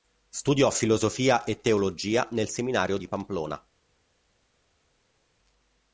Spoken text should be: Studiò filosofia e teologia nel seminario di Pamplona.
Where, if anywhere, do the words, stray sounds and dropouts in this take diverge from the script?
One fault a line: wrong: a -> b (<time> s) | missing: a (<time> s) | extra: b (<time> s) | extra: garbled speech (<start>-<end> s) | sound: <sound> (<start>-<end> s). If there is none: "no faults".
no faults